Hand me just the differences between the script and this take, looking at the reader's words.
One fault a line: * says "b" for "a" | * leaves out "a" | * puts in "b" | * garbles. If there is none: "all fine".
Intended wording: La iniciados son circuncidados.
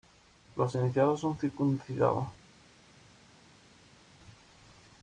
* says "Los" for "La"